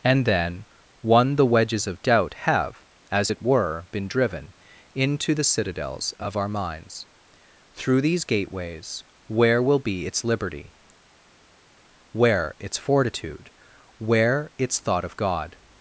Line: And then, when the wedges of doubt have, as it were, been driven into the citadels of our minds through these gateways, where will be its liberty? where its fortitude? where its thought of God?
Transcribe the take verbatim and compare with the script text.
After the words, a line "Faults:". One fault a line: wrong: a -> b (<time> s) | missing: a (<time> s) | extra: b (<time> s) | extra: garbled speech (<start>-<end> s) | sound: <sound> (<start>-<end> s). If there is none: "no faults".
And then, one the wedges of doubt have, as it were, been driven into the citadels of our minds through these gateways, where will be its liberty? where its fortitude? where its thought of God?
Faults:
wrong: when -> one (1.0 s)